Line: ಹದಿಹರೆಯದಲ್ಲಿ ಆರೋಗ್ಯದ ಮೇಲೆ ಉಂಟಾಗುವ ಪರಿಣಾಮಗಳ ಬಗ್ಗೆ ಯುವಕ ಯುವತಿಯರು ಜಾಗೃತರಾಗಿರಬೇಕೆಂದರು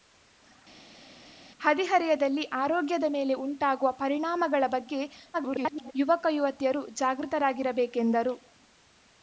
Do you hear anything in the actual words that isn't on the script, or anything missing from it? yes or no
yes